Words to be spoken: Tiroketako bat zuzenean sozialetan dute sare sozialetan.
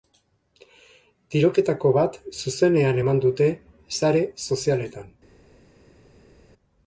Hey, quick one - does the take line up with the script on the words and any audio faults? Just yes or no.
no